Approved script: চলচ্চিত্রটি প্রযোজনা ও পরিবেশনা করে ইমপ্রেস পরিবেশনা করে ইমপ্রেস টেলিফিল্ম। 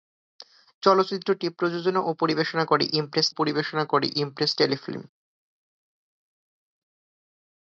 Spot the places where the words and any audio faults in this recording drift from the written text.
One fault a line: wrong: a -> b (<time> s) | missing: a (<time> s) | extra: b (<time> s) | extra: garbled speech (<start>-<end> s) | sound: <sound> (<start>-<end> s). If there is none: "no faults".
no faults